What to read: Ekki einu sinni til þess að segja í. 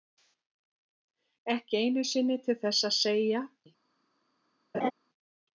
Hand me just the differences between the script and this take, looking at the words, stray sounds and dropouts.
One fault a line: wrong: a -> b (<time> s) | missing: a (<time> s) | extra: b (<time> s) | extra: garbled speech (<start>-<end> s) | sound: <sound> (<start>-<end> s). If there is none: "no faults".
sound: laugh (4.7-4.9 s)